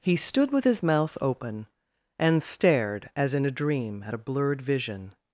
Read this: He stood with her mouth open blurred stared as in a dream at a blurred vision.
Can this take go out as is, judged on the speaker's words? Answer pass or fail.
fail